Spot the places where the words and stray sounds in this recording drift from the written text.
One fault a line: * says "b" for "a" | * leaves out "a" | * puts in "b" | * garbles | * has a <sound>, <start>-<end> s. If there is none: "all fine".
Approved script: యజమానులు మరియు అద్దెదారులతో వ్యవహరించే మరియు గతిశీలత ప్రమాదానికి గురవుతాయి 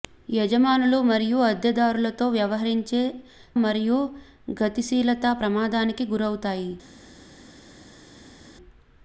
all fine